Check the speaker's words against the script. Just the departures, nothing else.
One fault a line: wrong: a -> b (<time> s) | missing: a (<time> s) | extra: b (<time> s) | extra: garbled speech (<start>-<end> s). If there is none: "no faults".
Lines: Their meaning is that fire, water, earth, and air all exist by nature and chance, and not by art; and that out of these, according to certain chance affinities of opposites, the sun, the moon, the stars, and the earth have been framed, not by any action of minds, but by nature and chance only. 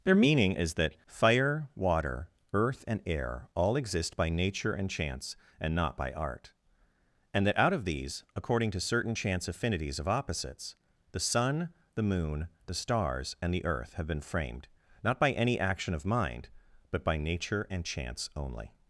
wrong: minds -> mind (16.0 s)